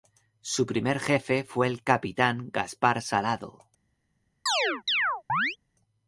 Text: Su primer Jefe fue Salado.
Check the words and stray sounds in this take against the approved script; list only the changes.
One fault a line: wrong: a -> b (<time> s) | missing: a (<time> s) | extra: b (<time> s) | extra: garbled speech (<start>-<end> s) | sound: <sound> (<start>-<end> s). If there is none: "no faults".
extra: el Capitán Gaspar (1.7 s)
sound: chirp (4.5-5.6 s)